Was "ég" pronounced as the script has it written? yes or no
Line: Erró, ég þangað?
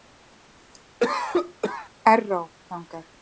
yes